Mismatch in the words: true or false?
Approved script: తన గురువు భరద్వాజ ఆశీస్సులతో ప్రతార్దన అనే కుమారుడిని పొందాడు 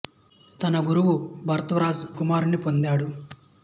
true